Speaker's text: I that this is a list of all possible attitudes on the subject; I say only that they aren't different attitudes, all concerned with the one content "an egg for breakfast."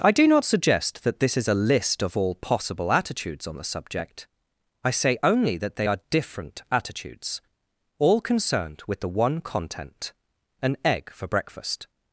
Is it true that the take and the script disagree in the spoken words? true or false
true